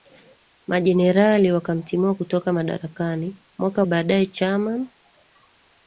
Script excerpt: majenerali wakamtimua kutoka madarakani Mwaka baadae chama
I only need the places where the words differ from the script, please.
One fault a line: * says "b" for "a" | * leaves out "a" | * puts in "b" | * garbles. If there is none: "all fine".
all fine